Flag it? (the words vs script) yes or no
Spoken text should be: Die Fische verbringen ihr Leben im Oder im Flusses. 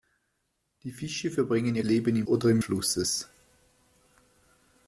no